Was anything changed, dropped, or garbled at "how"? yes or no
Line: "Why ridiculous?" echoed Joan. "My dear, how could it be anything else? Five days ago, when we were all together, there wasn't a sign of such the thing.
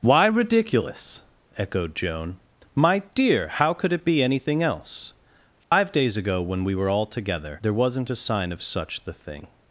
no